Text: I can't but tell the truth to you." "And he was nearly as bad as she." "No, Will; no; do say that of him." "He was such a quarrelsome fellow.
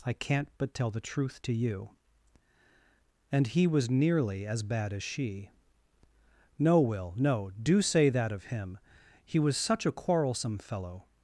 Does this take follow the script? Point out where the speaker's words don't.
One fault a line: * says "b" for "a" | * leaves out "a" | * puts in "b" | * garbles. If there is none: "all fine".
all fine